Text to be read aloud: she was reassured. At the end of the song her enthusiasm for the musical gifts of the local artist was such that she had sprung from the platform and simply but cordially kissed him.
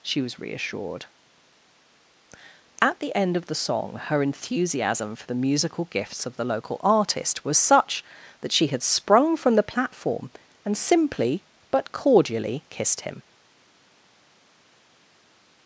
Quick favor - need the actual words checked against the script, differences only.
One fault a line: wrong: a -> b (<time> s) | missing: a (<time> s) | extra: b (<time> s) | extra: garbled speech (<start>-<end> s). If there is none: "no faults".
no faults